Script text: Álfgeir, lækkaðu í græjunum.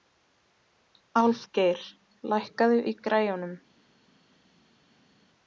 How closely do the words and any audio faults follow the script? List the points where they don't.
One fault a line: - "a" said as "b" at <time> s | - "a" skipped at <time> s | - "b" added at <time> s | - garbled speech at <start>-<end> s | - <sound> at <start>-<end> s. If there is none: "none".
none